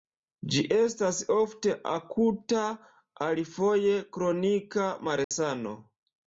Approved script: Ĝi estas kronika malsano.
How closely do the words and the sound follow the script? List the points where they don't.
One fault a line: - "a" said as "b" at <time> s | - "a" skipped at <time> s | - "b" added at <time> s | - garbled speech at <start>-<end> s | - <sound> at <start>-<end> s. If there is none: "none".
- "ofte akuta alifoje" added at 1.4 s
- dropout at 5.2-5.3 s